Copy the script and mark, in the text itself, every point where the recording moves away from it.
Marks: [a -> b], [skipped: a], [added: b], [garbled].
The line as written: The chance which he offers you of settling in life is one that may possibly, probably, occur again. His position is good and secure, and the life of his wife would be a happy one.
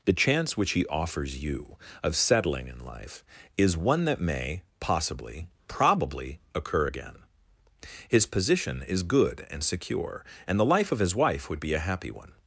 The chance which he offers you of settling in life is one that may possibly, probably, occur again. His position is good and secure, and the life of his wife would be a happy one.